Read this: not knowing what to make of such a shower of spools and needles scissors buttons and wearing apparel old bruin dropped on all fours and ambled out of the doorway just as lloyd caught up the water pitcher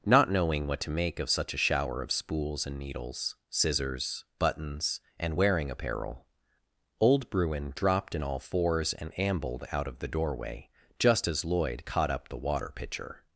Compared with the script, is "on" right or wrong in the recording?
wrong